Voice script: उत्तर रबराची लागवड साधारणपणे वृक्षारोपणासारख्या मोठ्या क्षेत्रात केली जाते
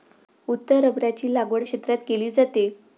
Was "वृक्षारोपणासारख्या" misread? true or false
true